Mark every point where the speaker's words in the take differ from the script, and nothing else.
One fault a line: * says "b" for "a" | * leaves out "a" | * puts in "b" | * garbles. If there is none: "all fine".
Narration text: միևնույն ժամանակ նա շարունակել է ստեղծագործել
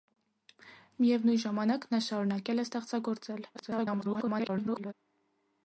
* garbles